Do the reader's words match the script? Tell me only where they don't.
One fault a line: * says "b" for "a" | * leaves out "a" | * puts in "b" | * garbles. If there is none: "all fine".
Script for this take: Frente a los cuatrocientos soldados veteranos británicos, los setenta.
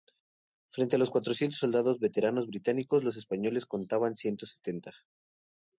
* puts in "españoles contaban ciento"